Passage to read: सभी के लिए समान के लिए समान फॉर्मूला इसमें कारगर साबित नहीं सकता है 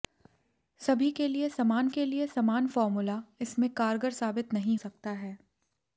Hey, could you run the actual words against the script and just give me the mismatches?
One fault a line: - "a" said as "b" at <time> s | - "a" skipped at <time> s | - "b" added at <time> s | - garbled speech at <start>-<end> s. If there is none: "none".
none